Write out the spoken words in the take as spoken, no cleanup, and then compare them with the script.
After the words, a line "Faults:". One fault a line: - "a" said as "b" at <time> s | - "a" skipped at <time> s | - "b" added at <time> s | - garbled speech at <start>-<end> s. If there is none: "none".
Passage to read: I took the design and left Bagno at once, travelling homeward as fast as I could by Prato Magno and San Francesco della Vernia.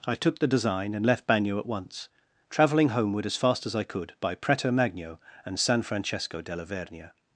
I took the design and left Bagno at once, travelling homeward as fast as I could by Prato Magno and San Francesco della Vernia.
Faults:
none